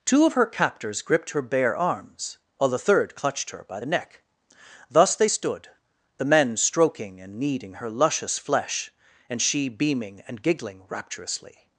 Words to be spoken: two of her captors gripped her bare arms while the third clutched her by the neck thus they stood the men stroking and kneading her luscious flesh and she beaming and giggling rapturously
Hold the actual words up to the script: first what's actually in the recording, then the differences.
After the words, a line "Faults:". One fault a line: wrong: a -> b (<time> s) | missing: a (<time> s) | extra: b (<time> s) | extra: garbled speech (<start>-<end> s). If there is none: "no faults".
two of her captors gripped her bare arms while the third clutched her by the neck thus they stood the men stroking and kneading her luscious flesh and she beaming and giggling rapturously
Faults:
no faults